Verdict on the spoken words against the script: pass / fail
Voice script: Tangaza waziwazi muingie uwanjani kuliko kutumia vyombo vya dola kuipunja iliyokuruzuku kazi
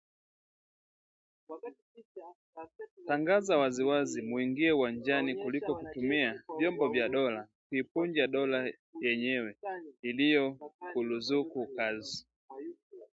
fail